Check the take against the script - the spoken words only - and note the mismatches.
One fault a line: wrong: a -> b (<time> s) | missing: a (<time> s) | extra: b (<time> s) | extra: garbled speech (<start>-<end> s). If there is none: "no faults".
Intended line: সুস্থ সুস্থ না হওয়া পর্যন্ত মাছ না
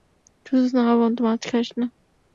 missing: সুস্থ (0.7 s)
extra: খাস (1.4 s)